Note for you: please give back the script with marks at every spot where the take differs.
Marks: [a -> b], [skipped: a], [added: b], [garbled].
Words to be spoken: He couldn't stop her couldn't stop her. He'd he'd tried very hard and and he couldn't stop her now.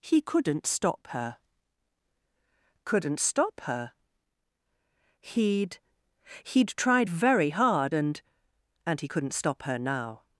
He couldn't stop her couldn't stop her. He'd he'd tried very hard and and he couldn't stop her now.